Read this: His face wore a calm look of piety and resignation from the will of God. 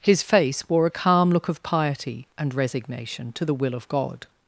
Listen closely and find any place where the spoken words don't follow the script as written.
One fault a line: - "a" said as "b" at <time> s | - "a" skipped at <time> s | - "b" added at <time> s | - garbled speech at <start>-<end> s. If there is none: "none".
- "from" said as "to" at 3.3 s